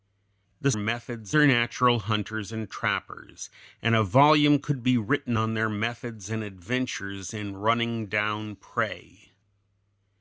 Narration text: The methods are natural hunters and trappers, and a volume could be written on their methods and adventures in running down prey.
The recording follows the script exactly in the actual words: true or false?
true